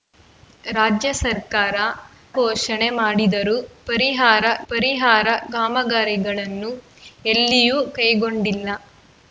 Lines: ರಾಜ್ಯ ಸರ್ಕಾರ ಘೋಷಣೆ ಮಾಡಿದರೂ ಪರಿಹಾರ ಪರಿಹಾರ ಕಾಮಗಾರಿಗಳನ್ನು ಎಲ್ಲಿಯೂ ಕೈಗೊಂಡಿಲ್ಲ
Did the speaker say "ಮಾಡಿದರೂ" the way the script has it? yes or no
yes